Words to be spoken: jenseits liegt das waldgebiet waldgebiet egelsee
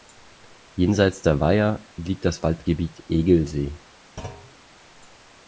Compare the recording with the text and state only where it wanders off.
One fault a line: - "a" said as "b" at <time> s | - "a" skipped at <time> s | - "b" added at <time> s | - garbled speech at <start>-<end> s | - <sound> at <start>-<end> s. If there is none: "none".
- "der weiher" added at 1.2 s
- "waldgebiet" skipped at 3.0 s
- thud at 4.2-4.5 s